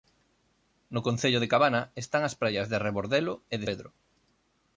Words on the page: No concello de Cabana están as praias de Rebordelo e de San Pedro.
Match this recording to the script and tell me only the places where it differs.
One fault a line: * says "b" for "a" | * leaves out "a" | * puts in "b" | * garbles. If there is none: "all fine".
* leaves out "San"